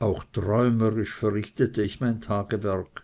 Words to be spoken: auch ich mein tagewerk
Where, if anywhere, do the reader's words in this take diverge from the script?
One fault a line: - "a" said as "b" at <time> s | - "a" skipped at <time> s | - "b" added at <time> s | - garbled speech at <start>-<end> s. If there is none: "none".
- "träumerisch verrichtete" added at 0.3 s